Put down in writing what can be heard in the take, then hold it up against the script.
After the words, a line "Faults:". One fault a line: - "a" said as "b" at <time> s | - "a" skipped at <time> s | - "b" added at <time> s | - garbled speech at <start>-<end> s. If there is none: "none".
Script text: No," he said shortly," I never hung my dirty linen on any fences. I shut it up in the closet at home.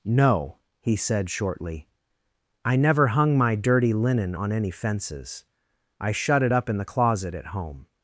No," he said shortly," I never hung my dirty linen on any fences. I shut it up in the closet at home.
Faults:
none